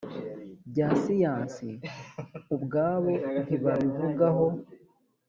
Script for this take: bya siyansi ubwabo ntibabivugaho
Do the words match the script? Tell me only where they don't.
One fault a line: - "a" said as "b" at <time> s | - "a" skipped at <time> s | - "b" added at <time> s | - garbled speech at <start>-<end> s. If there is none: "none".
none